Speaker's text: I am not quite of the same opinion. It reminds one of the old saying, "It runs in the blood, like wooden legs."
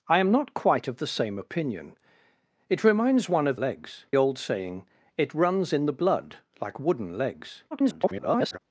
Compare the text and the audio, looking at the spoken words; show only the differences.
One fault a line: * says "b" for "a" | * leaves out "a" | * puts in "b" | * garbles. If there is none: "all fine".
* says "legs" for "the"
* garbles